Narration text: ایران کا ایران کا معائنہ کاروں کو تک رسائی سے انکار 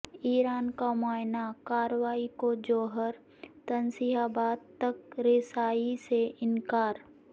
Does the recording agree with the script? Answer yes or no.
no